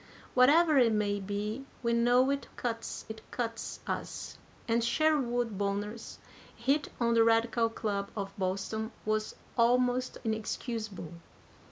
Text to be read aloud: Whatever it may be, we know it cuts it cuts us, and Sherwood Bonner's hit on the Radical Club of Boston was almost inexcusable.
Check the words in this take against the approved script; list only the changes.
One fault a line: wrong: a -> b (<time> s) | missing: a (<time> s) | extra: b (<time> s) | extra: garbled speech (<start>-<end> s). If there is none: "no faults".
no faults